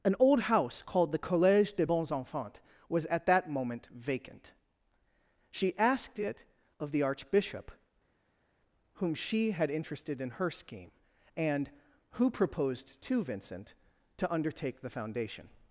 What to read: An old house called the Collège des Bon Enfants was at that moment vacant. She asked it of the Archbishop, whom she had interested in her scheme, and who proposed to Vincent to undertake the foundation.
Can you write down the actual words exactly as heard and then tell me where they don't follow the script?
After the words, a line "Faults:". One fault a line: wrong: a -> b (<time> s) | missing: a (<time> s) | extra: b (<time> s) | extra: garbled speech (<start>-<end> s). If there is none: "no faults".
An old house called the Collège des Bons Enfants was at that moment vacant. She asked it of the Archbishop, whom she had interested in her scheme, and who proposed to Vincent to undertake the foundation.
Faults:
wrong: Bon -> Bons (1.8 s)